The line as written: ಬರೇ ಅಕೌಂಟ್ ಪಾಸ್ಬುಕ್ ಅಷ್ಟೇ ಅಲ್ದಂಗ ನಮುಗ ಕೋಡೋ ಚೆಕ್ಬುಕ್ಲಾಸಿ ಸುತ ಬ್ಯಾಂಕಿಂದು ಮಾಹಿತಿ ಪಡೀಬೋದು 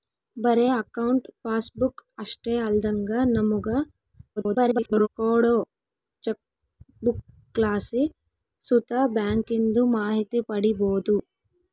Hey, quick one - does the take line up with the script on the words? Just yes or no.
no